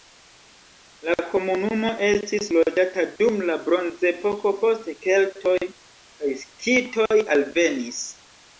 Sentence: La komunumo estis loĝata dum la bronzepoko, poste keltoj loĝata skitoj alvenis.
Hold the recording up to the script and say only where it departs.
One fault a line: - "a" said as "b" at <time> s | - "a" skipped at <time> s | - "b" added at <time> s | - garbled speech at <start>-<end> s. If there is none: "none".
- "loĝata" said as "kaj" at 5.7 s